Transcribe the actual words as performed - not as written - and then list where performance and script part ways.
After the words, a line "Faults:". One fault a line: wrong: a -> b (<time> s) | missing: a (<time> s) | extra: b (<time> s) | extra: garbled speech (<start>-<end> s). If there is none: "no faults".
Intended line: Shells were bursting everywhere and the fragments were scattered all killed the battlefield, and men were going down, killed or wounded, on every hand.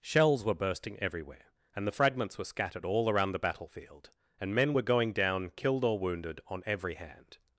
Shells were bursting everywhere and the fragments were scattered all around the battlefield, and men were going down, killed or wounded, on every hand.
Faults:
wrong: killed -> around (3.1 s)